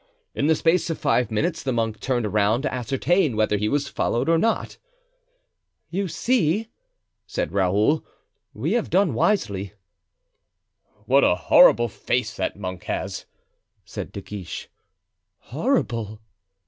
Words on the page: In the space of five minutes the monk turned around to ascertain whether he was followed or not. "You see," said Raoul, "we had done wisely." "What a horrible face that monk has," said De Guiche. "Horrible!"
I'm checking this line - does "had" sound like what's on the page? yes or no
no